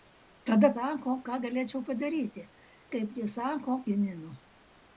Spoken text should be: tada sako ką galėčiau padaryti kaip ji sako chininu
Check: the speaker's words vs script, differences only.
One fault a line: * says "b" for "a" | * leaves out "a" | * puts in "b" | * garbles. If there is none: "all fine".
all fine